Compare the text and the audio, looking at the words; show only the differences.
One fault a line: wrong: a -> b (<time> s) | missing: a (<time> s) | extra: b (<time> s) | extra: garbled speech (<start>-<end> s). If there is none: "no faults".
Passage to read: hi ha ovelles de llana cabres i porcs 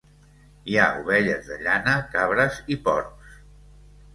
no faults